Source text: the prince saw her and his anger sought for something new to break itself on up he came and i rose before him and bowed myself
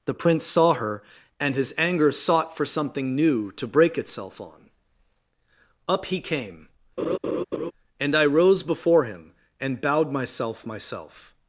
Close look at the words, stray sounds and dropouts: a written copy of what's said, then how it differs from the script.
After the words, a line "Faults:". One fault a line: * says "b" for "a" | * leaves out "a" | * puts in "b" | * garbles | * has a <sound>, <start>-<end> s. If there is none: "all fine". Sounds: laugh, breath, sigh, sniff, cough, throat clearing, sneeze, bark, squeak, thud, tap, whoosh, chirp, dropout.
the prince saw her and his anger sought for something new to break itself on up he came and i rose before him and bowed myself myself
Faults:
* has a laugh, 7.0-7.7 s
* puts in "myself"